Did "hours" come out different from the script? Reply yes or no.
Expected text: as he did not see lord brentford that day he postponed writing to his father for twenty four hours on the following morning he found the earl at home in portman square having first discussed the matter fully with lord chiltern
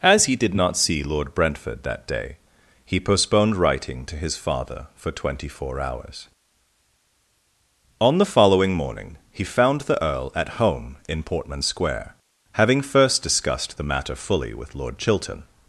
no